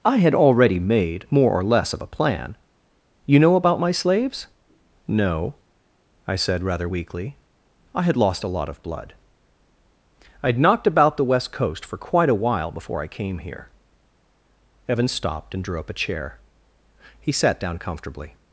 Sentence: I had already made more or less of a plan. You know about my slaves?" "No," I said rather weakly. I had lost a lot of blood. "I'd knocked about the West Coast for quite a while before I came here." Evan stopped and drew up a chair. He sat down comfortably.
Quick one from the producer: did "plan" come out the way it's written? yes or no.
yes